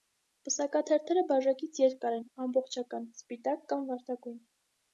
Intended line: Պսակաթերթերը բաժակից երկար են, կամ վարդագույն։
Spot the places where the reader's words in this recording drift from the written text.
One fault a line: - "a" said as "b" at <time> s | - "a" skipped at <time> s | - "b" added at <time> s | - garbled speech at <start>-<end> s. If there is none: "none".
- "ամբողջական սպիտակ" added at 2.5 s